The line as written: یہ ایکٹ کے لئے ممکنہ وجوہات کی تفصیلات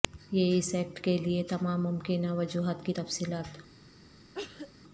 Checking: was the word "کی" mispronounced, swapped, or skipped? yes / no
no